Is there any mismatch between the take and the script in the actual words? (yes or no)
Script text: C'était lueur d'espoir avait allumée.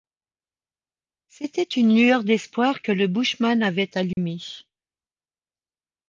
yes